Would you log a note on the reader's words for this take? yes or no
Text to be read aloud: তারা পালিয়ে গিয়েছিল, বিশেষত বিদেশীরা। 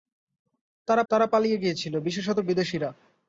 yes